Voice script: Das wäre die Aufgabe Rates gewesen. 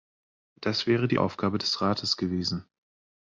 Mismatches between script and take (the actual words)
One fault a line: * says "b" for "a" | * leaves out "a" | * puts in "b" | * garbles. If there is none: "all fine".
* puts in "des"